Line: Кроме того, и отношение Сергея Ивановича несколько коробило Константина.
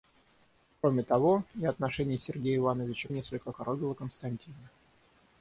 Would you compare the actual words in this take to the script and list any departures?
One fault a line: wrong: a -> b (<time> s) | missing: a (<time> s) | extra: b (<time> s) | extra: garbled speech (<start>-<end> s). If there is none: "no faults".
no faults